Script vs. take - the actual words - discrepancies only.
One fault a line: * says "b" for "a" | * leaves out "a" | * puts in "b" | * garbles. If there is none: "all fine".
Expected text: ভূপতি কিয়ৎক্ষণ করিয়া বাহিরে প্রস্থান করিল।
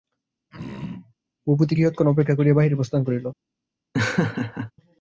* puts in "অপেক্ষা"